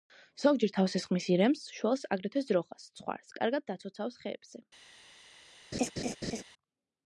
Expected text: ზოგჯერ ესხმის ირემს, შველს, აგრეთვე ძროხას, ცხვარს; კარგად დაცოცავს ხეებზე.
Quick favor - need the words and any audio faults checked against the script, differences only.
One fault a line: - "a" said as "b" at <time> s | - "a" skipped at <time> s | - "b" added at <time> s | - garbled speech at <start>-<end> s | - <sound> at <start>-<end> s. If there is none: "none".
- "თავს" added at 0.8 s
- laugh at 5.7-6.4 s